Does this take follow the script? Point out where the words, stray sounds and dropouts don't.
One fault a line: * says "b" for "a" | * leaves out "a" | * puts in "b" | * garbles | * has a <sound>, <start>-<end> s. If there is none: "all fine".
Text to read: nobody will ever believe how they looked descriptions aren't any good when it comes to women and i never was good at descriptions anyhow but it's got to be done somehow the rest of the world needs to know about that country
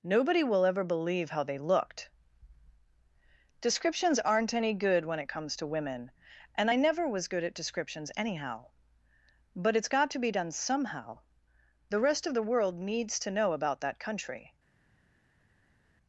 all fine